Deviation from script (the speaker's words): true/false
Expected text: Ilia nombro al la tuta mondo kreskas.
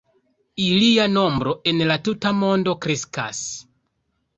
true